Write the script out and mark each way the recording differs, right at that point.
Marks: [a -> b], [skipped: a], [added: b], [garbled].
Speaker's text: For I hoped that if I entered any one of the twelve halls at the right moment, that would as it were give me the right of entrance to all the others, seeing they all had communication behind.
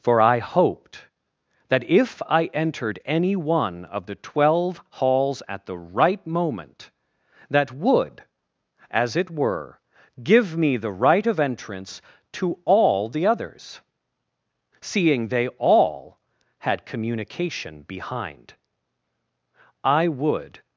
For I hoped that if I entered any one of the twelve halls at the right moment, that would as it were give me the right of entrance to all the others, seeing they all had communication behind. [added: I would]